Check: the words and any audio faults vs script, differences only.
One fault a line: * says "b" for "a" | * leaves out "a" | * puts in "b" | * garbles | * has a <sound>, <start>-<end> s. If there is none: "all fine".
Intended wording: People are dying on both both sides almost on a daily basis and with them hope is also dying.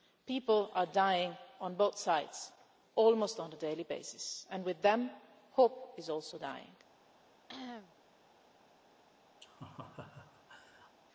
* leaves out "both"
* has a cough, 7.5-7.9 s
* has a laugh, 9.4-11.0 s